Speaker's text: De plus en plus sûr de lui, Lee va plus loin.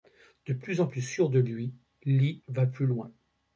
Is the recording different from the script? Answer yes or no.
no